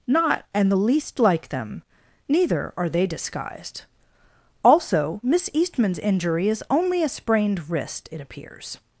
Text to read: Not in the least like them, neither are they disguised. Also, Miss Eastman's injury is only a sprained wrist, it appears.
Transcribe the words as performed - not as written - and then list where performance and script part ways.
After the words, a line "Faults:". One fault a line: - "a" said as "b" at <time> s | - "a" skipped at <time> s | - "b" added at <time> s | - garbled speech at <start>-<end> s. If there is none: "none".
Not and the least like them, neither are they disguised. Also, Miss Eastman's injury is only a sprained wrist, it appears.
Faults:
- "in" said as "and" at 0.5 s